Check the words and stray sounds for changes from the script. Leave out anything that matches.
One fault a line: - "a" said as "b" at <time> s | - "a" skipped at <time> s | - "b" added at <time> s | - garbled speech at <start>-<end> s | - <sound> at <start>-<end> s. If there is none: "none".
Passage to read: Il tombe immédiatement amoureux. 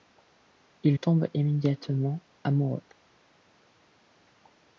none